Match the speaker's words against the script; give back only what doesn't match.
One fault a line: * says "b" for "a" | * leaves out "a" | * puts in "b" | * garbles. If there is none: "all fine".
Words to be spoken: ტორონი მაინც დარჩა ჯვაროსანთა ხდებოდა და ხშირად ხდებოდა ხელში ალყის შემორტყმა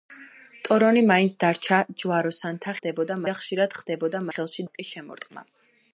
all fine